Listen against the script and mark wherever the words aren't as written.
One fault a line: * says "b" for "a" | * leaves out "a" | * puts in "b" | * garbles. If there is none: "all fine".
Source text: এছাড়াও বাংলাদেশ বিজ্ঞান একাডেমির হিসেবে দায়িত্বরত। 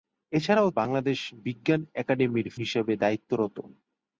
all fine